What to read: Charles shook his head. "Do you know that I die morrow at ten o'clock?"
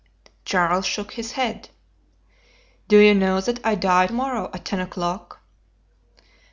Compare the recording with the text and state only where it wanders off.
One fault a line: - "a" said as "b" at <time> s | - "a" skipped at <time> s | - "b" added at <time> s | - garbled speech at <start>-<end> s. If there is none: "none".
none